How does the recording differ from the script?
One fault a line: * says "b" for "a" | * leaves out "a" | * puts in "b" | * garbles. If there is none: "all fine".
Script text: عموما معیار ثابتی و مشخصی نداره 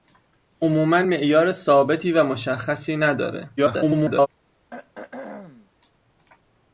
* garbles